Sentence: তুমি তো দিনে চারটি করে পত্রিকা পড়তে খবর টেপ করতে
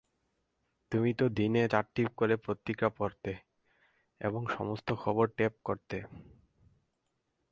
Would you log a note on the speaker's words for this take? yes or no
yes